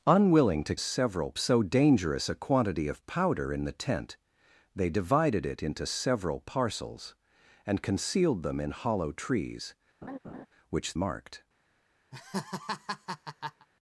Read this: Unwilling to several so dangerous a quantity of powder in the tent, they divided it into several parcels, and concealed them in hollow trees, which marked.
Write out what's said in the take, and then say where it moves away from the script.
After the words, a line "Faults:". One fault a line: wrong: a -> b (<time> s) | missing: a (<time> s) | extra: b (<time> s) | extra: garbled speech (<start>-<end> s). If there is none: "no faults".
Unwilling to several so dangerous a quantity of powder in the tent, they divided it into several parcels, and concealed them in hollow trees, which marked.
Faults:
no faults